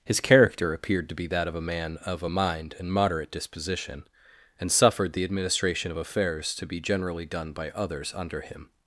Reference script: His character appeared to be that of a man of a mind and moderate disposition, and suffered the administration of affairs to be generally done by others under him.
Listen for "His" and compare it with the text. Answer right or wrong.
right